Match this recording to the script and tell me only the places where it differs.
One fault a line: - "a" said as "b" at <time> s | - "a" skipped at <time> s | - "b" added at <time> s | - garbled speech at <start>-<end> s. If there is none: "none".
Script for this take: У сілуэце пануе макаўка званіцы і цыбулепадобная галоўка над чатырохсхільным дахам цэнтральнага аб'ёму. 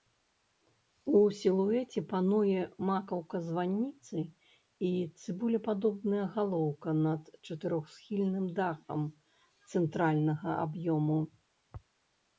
none